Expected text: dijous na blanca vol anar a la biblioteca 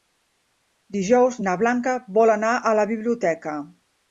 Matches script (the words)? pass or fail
pass